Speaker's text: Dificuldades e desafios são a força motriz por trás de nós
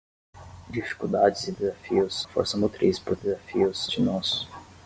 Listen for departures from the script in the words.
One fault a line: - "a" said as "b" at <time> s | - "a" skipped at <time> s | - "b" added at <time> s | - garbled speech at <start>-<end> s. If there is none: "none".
- "são" skipped at 2.2 s
- "trás" said as "desafios" at 3.1 s